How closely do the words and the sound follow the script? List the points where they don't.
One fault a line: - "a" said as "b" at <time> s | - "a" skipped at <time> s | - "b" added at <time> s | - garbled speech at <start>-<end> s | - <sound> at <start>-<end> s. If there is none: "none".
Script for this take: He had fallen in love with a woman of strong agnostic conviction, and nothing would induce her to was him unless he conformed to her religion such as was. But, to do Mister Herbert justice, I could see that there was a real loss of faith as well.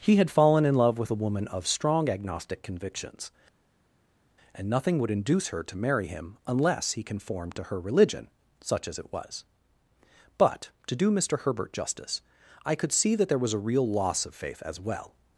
- "conviction" said as "convictions" at 2.6 s
- "was" said as "marry" at 5.8 s
- "it" added at 9.0 s